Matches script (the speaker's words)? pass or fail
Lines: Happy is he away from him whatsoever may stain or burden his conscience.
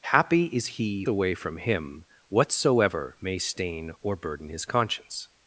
pass